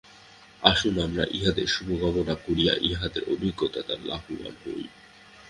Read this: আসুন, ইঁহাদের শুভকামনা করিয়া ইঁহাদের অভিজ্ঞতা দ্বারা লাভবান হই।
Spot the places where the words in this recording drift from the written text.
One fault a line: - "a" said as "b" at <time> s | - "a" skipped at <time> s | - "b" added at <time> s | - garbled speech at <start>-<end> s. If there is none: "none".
- "আমরা" added at 1.0 s